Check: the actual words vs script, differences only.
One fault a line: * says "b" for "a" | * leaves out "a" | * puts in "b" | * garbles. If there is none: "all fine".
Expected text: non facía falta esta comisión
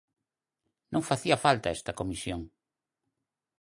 all fine